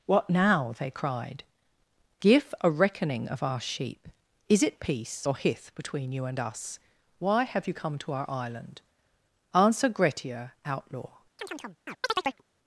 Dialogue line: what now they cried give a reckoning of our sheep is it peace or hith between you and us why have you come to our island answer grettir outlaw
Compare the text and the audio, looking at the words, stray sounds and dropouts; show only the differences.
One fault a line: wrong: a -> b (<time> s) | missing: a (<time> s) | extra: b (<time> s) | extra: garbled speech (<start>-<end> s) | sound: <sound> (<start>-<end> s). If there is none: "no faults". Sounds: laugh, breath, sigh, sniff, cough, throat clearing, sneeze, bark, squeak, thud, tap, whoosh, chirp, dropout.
sound: chirp (11.4-12.4 s)